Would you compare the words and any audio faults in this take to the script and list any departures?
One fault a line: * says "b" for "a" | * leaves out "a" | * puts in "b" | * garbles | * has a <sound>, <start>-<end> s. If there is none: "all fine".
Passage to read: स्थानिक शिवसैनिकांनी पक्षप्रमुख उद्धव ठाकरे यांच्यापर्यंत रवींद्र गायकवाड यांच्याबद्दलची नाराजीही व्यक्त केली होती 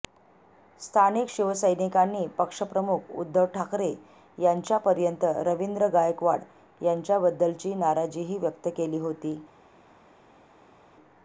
all fine